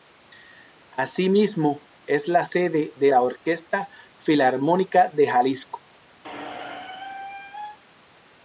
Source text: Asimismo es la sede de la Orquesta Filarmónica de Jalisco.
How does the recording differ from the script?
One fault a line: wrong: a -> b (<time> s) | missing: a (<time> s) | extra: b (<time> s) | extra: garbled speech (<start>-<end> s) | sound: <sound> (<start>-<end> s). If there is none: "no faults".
sound: squeak (6.2-7.8 s)